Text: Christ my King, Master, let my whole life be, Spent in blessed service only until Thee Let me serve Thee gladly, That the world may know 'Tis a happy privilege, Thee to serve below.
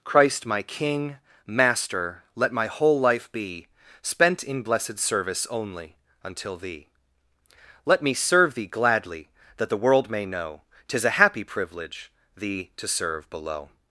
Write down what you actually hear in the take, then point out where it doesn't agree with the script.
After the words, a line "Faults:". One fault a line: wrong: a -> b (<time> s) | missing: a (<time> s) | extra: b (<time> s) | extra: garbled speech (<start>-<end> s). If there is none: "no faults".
Christ my King, Master, let my whole life be, Spent in blessed service only until Thee Let me serve Thee gladly, That the world may know 'Tis a happy privilege, Thee to serve below.
Faults:
no faults